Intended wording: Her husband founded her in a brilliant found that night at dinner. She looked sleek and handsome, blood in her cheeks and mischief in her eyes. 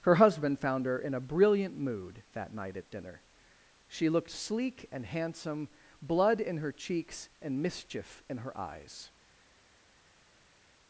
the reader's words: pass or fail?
fail